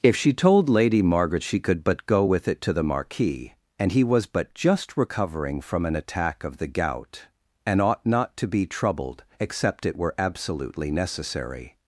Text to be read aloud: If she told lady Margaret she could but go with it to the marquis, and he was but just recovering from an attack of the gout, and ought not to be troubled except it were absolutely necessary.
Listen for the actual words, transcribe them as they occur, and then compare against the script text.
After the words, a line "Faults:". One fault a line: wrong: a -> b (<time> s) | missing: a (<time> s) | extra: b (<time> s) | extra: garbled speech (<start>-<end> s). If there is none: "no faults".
If she told lady Margaret she could but go with it to the marquis, and he was but just recovering from an attack of the gout, and ought not to be troubled except it were absolutely necessary.
Faults:
no faults